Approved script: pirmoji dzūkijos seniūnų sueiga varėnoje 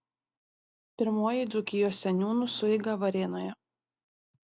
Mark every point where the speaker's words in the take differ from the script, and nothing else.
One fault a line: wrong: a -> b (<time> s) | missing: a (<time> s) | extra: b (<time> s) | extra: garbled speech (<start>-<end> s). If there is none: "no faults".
no faults